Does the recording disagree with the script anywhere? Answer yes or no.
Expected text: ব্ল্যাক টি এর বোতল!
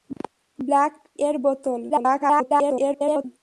yes